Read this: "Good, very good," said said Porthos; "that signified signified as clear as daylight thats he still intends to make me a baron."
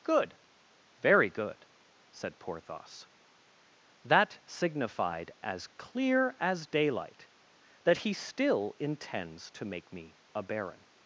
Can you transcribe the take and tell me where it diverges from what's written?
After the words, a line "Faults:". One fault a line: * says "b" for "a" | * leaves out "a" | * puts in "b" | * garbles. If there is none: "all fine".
"Good, very good," said Porthos; "that signified as clear as daylight that he still intends to make me a baron."
Faults:
* leaves out "said"
* leaves out "signified"
* says "that" for "thats"